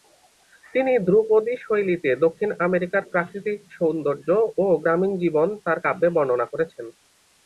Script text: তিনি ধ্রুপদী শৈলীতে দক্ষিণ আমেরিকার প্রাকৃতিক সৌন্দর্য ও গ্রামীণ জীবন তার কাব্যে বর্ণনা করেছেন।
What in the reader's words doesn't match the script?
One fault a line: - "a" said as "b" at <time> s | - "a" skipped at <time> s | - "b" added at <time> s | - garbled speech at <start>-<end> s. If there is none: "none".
none